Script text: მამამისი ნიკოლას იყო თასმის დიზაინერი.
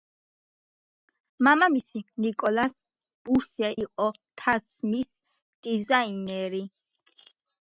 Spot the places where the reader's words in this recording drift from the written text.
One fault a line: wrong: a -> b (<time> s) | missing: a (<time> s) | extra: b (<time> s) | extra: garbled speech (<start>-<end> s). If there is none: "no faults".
extra: ბუშე (3.3 s)